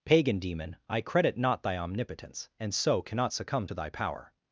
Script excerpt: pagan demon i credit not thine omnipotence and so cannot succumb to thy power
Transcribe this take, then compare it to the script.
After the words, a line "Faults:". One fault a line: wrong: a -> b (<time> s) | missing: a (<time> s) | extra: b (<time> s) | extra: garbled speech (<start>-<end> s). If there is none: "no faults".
pagan demon i credit not thy omnipotence and so cannot succumb to thy power
Faults:
wrong: thine -> thy (1.6 s)